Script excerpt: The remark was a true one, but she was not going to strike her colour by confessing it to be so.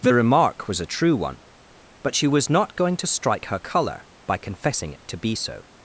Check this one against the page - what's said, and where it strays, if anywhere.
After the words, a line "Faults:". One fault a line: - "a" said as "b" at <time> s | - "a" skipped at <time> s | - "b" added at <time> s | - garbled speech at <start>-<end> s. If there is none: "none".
The remark was a true one, but she was not going to strike her colour by confessing it to be so.
Faults:
none